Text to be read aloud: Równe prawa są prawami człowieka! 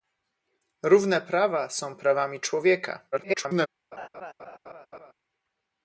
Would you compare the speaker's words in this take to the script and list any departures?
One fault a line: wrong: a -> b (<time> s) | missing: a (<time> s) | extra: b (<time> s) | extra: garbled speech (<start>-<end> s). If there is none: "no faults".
extra: garbled speech (3.1-3.7 s)